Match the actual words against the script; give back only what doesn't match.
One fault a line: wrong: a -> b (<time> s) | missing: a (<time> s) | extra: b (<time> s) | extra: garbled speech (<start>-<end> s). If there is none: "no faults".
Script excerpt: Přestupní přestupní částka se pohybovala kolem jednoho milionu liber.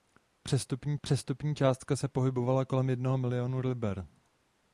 no faults